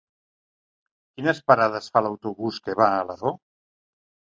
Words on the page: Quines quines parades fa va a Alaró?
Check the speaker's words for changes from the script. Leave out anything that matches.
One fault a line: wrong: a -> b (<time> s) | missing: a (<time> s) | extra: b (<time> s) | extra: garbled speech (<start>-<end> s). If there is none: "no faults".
missing: quines (1.4 s)
extra: l'autobús que (2.1 s)